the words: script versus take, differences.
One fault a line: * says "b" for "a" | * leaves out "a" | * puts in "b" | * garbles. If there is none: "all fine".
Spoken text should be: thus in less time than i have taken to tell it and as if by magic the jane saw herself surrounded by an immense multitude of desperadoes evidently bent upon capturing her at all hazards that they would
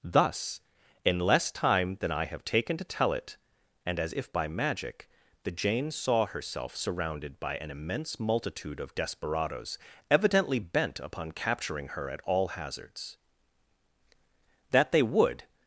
all fine